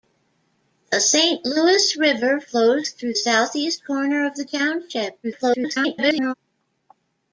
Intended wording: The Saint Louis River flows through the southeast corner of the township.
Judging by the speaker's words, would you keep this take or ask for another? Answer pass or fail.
fail